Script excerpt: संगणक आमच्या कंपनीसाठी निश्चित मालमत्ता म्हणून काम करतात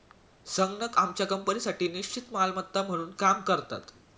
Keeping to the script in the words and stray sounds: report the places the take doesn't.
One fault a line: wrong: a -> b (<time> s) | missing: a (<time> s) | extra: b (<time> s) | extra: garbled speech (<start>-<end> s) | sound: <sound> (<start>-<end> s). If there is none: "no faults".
no faults